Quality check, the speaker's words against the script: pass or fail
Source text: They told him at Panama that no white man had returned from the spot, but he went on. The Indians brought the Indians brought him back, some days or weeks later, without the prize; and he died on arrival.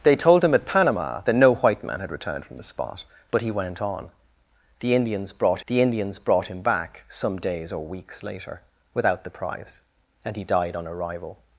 pass